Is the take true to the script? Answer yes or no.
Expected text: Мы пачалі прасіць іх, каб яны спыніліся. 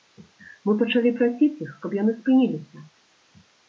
yes